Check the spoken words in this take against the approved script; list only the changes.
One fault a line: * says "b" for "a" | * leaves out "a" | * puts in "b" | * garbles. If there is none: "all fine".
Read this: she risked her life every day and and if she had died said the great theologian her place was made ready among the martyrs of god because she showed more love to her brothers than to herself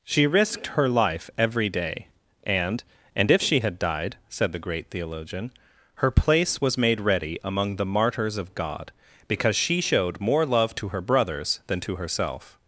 all fine